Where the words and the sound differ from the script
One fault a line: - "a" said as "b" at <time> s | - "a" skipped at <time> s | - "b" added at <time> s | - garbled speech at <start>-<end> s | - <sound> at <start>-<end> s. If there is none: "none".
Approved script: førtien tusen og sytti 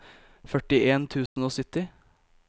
- dropout at 1.3-1.4 s